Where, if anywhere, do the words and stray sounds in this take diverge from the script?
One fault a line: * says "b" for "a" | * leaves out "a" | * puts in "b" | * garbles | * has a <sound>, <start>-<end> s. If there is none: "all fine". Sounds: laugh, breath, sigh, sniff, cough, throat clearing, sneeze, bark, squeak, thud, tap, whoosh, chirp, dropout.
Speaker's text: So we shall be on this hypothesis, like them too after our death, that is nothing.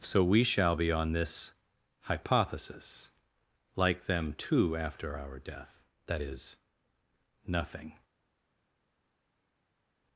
all fine